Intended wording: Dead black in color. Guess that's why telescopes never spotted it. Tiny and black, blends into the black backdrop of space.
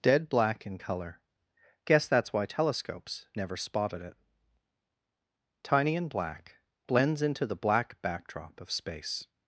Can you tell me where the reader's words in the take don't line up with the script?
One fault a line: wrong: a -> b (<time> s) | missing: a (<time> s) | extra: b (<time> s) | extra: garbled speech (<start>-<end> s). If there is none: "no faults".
no faults